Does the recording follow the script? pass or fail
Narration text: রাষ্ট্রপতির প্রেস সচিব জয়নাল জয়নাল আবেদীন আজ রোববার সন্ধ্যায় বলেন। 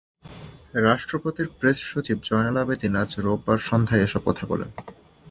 fail